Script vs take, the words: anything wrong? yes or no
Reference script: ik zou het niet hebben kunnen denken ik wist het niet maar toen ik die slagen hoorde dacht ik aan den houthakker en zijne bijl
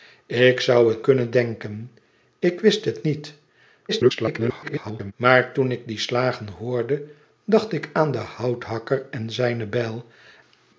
yes